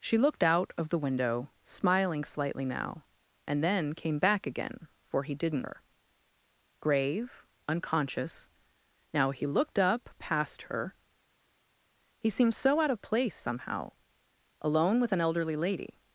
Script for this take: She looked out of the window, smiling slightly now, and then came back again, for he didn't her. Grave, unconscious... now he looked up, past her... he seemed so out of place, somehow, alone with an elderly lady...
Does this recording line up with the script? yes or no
yes